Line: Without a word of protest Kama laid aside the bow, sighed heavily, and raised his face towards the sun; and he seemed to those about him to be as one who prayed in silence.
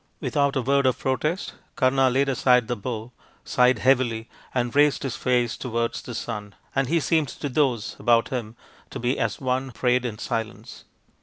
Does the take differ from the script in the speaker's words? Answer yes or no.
yes